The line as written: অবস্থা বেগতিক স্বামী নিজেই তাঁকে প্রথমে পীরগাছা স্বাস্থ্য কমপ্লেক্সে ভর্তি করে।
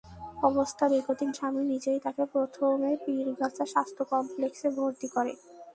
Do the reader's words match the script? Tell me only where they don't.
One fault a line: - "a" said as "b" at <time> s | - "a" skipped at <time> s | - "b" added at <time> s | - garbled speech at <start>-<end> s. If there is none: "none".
none